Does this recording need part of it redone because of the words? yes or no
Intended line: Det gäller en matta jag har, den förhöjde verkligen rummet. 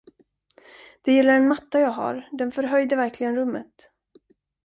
no